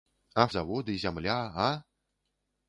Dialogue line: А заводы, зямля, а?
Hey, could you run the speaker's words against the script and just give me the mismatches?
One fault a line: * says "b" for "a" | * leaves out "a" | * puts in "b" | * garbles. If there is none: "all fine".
all fine